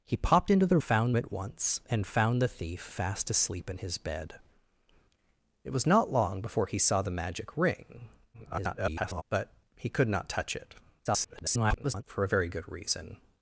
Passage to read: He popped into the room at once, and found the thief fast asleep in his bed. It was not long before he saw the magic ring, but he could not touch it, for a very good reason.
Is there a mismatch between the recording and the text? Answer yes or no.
yes